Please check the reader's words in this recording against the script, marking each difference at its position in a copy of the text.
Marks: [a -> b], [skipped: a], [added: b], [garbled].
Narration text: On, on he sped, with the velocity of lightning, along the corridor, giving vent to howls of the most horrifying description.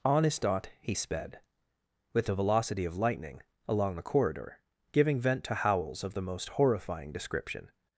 On, [on -> his dot] he sped, with the velocity of lightning, along the corridor, giving vent to howls of the most horrifying description.